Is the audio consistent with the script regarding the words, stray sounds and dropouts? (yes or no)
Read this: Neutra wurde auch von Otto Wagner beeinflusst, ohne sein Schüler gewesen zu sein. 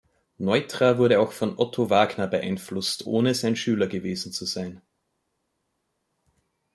yes